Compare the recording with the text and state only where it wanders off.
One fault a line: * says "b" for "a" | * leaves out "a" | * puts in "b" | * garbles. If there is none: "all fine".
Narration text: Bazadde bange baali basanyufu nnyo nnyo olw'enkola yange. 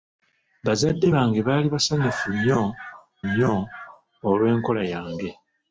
all fine